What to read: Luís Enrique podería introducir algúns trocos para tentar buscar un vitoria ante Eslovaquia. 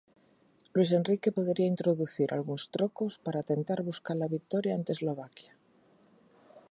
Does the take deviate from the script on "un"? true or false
true